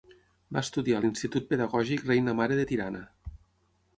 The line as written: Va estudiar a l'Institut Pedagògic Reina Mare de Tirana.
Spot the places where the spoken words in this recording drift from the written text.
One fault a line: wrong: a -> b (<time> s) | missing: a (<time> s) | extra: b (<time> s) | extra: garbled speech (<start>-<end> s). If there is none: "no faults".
no faults